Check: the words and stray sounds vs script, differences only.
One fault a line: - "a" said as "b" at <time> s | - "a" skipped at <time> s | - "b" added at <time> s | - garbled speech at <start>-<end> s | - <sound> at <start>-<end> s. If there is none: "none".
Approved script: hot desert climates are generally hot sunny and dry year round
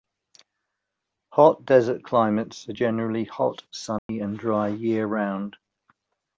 - dropout at 4.0-4.1 s